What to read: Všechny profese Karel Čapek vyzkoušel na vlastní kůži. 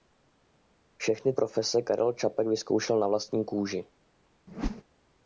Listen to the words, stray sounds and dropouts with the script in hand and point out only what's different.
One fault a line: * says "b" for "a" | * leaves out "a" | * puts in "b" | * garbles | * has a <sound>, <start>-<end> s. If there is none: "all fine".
* has a whoosh, 4.5-4.8 s